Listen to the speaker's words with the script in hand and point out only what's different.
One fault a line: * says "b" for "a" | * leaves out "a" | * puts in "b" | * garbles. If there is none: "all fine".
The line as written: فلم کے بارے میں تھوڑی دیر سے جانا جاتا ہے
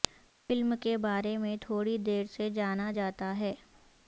all fine